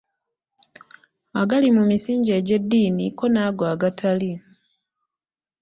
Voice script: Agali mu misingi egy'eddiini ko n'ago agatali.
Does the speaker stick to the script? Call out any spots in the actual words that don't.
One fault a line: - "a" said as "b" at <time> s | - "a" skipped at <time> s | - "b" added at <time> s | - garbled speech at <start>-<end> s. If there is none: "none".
none